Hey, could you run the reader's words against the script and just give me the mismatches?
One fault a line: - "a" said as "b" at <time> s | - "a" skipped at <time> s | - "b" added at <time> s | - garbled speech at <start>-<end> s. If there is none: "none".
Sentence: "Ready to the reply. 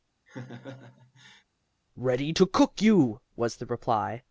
- "cook you was" added at 2.4 s